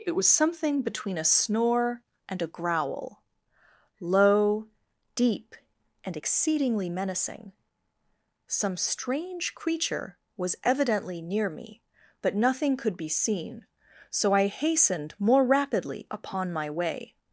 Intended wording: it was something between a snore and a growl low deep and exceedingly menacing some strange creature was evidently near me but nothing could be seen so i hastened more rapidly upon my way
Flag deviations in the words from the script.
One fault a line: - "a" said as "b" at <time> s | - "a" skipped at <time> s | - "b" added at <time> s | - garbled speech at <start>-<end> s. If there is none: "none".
none